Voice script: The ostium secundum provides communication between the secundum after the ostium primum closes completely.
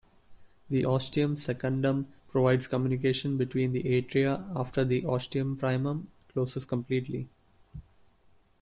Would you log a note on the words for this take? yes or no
yes